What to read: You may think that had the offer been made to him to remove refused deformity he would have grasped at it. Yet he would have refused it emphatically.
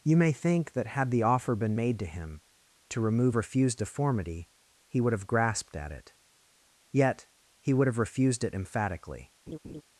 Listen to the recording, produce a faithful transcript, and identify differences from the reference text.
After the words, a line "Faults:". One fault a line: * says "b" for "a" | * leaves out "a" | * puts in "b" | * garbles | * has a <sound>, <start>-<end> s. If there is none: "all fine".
You may think that had the offer been made to him to remove refused deformity he would have grasped at it. Yet he would have refused it emphatically.
Faults:
* has a laugh, 9.5-9.8 s